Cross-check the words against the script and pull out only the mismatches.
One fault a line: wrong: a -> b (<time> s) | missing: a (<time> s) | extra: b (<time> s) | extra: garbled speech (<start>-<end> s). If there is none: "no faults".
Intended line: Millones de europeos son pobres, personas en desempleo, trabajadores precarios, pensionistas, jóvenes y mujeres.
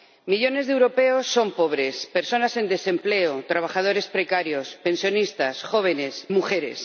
missing: y (6.3 s)